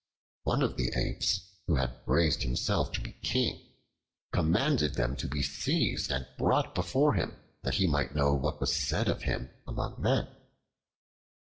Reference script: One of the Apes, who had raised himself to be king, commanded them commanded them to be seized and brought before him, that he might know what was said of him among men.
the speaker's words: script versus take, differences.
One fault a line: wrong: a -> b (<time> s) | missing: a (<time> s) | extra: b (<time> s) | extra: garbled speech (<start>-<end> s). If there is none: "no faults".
missing: commanded them (5.1 s)